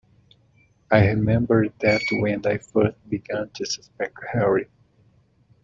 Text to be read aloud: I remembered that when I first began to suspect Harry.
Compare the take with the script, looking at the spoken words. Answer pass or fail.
pass